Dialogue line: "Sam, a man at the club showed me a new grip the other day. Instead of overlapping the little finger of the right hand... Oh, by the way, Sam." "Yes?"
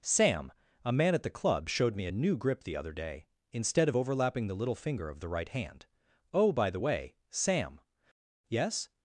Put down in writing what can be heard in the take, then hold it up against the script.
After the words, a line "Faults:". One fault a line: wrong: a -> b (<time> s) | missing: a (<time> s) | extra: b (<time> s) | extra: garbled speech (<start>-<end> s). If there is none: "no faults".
"Sam, a man at the club showed me a new grip the other day. Instead of overlapping the little finger of the right hand... Oh, by the way, Sam." "Yes?"
Faults:
no faults